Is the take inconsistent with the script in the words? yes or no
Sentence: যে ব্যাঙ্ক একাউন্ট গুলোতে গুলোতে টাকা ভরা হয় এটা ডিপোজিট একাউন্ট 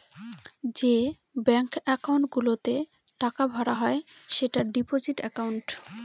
yes